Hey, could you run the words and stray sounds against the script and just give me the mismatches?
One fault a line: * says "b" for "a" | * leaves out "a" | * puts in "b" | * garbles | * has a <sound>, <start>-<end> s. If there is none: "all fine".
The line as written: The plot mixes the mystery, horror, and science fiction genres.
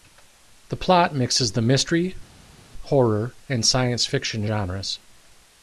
all fine